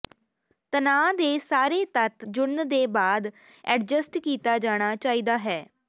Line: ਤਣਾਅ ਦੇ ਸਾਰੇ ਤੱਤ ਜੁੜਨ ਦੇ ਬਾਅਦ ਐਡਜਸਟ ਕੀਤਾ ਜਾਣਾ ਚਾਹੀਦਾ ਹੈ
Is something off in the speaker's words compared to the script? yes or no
no